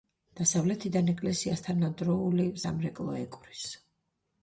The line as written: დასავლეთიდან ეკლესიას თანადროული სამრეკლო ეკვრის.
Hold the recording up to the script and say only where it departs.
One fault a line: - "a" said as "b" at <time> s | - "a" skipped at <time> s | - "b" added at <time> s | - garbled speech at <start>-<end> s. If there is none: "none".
none